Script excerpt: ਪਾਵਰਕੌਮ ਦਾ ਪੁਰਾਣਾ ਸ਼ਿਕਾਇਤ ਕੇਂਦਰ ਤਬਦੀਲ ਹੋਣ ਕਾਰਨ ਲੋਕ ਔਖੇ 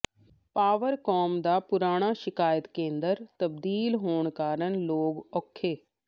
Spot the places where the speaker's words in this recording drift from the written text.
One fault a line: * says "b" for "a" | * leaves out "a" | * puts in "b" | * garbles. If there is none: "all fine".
all fine